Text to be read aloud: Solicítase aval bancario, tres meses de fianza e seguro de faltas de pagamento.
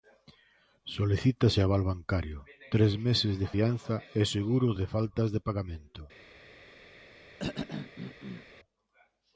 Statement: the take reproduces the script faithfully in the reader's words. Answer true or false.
true